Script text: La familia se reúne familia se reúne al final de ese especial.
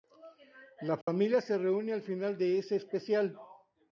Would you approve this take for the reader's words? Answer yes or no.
no